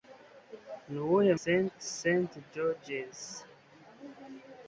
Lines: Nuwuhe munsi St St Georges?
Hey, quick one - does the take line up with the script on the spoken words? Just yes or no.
no